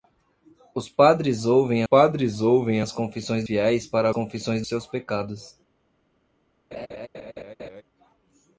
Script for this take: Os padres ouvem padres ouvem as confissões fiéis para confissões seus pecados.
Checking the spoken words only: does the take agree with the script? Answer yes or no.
yes